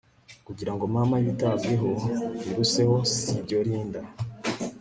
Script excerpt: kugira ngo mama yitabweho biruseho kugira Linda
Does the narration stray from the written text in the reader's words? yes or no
yes